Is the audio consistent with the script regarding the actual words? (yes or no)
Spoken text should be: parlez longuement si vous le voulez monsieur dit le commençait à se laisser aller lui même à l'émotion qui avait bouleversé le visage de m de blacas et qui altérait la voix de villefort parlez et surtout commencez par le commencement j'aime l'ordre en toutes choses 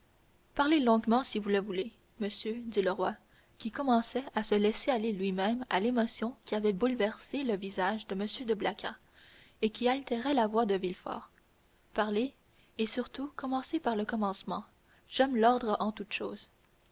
no